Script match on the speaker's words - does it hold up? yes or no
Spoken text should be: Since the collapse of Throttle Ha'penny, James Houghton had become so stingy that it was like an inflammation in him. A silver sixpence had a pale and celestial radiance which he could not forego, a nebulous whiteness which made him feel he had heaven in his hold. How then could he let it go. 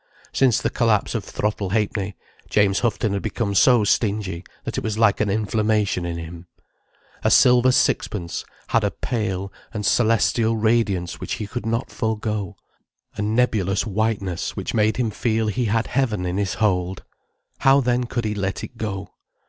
yes